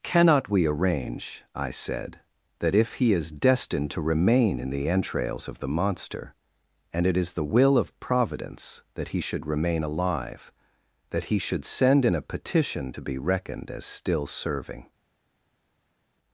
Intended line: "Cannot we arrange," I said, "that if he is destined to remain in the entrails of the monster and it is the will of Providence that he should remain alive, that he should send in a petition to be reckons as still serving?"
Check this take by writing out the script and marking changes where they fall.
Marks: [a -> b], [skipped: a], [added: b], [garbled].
"Cannot we arrange," I said, "that if he is destined to remain in the entrails of the monster and it is the will of Providence that he should remain alive, that he should send in a petition to be [reckons -> reckoned] as still serving?"